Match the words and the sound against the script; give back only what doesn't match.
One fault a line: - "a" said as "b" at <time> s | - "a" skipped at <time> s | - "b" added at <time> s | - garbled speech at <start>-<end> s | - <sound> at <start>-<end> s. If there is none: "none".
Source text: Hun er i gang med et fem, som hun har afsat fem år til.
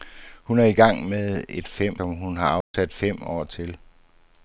- dropout at 2.6-2.7 s